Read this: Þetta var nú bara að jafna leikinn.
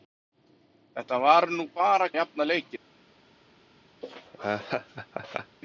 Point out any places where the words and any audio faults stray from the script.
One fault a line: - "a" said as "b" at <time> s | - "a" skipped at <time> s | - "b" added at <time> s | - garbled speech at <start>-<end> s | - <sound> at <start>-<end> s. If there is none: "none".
- laugh at 4.0-5.6 s